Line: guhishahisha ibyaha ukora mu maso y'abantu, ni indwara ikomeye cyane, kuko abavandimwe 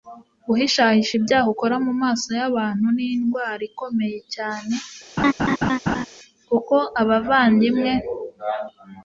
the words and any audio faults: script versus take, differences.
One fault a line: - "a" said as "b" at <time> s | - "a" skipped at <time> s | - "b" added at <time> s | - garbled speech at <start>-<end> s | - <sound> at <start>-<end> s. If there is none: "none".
- laugh at 5.2-6.1 s